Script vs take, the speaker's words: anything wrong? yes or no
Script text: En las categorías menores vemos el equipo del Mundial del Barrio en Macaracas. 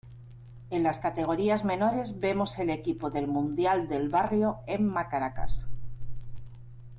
no